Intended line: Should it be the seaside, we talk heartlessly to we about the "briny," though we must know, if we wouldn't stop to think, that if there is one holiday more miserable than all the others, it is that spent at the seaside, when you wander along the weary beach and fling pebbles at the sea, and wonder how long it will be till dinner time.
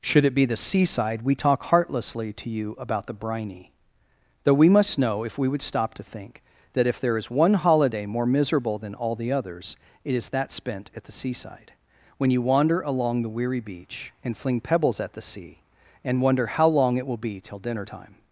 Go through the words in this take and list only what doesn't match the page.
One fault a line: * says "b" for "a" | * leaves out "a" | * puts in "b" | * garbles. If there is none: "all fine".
* says "you" for "we"
* says "would" for "wouldn't"